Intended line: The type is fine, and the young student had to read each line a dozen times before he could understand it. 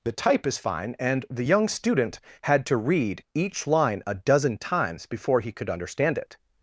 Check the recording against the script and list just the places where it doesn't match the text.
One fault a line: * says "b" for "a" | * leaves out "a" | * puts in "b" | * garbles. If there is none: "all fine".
all fine